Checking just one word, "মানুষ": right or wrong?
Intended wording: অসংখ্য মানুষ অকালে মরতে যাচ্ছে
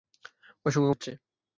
wrong